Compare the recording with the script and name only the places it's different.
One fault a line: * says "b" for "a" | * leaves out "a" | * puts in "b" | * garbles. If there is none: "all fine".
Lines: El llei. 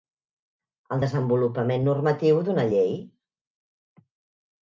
* puts in "desenvolupament normatiu d'una"